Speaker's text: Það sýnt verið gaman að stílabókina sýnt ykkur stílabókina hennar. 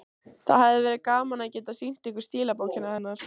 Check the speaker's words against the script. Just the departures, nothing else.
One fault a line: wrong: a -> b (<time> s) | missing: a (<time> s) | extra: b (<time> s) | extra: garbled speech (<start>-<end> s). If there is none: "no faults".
wrong: sýnt -> hefði (0.6 s)
wrong: stílabókina -> geta (1.6 s)